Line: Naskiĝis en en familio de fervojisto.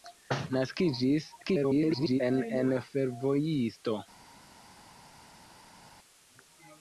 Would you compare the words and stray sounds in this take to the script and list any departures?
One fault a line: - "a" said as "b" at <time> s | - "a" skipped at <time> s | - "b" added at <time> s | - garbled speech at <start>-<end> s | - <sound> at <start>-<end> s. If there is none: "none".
- garbled speech at 1.4-2.2 s
- "familio de" skipped at 2.7 s